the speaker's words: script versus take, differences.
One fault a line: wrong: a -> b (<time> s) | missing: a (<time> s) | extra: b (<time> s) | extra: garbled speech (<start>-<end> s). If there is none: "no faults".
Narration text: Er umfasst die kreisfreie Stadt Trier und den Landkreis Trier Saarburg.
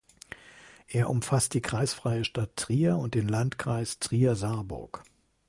no faults